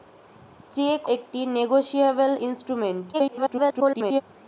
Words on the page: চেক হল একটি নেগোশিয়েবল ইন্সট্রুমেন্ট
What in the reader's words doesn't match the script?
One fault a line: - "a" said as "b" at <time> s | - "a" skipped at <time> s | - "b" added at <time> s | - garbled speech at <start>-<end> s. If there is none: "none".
- "হল" skipped at 1.0 s
- garbled speech at 3.1-4.2 s